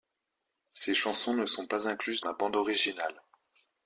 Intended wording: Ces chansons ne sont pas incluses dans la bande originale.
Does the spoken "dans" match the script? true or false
false